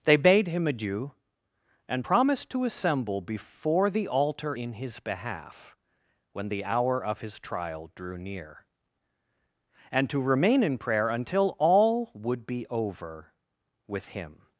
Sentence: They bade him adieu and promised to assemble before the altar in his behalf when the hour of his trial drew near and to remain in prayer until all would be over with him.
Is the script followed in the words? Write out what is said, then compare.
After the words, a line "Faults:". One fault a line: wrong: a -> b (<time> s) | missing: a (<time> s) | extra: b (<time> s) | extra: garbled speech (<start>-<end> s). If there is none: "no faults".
They bade him adieu and promised to assemble before the altar in his behalf when the hour of his trial drew near and to remain in prayer until all would be over with him.
Faults:
no faults